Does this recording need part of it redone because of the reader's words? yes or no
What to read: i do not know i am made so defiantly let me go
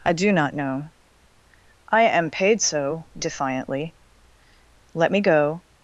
yes